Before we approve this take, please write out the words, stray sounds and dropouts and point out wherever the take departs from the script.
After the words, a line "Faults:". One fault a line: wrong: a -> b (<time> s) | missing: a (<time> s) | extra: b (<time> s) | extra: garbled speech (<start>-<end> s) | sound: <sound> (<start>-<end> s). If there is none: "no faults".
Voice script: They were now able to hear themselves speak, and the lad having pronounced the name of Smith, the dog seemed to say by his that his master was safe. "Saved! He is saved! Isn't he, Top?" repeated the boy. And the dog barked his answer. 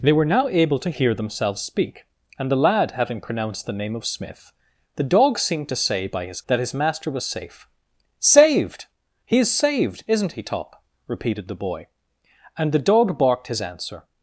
They were now able to hear themselves speak, and the lad having pronounced the name of Smith, the dog seemed to say by his that his master was safe. "Saved! He is saved! Isn't he, Top?" repeated the boy. And the dog barked his answer.
Faults:
no faults